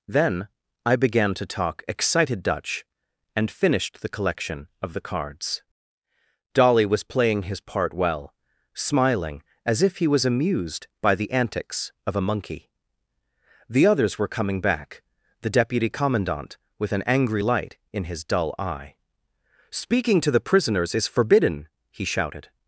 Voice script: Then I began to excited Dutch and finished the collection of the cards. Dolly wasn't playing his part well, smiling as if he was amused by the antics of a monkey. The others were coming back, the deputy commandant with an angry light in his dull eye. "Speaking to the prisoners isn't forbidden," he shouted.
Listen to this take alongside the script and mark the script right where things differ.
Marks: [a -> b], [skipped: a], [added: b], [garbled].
Then I began to [added: talk] excited Dutch and finished the collection of the cards. Dolly [wasn't -> was] playing his part well, smiling as if he was amused by the antics of a monkey. The others were coming back, the deputy commandant with an angry light in his dull eye. "Speaking to the prisoners [isn't -> is] forbidden," he shouted.